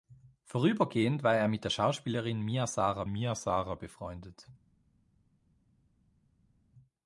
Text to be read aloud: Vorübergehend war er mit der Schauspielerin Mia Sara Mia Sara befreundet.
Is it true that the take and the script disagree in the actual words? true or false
false